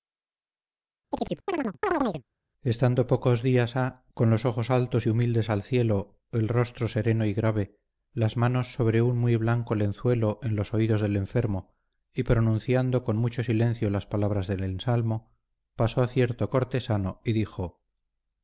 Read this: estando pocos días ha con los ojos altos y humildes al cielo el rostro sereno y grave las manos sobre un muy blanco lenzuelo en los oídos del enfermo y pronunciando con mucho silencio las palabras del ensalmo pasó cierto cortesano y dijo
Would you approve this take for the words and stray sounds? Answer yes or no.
no